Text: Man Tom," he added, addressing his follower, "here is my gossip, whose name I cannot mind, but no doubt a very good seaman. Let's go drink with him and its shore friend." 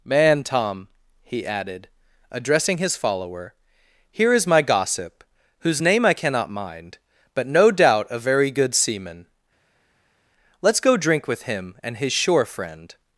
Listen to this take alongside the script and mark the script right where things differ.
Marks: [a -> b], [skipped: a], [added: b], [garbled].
Man Tom," he added, addressing his follower, "here is my gossip, whose name I cannot mind, but no doubt a very good seaman. Let's go drink with him and [its -> his] shore friend."